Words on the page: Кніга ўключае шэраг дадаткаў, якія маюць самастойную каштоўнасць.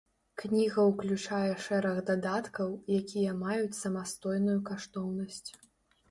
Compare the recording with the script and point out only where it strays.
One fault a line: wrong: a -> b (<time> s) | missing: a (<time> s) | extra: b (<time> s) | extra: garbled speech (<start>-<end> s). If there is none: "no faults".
no faults